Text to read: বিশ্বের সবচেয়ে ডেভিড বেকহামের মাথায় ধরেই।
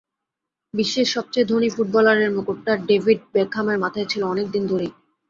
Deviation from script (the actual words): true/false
true